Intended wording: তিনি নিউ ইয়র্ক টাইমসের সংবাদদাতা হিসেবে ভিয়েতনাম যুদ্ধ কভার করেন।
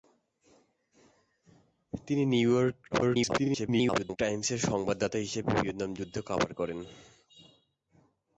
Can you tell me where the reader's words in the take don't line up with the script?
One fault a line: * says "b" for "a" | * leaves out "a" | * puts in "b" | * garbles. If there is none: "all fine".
* garbles